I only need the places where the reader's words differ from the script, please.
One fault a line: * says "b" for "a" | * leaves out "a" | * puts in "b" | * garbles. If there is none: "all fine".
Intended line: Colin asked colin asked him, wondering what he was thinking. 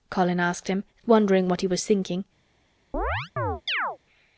* leaves out "colin asked"